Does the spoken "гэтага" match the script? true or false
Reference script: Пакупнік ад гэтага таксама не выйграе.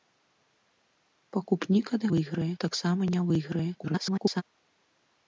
false